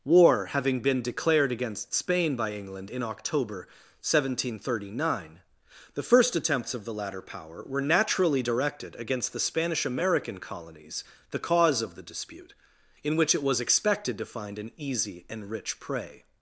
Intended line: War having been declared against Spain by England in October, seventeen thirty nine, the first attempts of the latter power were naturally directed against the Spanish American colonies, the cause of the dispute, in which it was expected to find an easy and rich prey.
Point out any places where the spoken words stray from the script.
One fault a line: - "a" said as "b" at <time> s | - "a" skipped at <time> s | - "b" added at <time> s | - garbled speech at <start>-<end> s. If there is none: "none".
none